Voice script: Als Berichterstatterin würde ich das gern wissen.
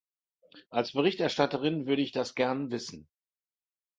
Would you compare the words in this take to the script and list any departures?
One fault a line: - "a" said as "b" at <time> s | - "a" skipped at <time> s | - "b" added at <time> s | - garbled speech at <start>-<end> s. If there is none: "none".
none